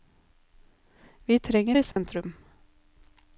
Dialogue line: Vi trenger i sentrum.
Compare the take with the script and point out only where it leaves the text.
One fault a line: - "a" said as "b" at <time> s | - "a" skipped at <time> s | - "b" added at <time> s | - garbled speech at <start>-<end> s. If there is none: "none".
none